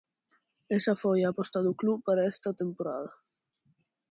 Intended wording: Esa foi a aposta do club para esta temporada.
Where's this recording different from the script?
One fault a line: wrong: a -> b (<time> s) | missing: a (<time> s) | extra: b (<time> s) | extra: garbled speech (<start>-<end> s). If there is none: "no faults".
no faults